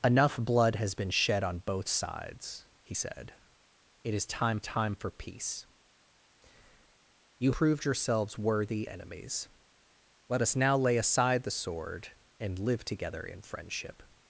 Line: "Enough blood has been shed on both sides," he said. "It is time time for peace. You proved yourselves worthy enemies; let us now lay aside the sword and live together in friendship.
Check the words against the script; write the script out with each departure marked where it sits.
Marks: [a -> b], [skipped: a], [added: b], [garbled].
"Enough blood has been shed on both sides," he said. "It is time time for peace. You proved yourselves worthy enemies; let us now lay aside the sword and live together in friendship.